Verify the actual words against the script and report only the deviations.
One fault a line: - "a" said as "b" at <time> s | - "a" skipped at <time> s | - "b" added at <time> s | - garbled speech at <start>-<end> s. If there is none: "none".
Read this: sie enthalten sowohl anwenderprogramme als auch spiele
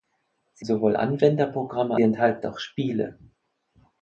- "enthalten" skipped at 0.7 s
- "als" said as "enthalten" at 2.0 s